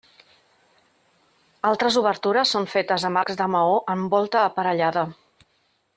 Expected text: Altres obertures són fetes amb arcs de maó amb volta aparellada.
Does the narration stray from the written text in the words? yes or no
no